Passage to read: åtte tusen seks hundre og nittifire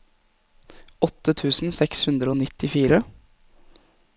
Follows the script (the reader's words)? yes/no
yes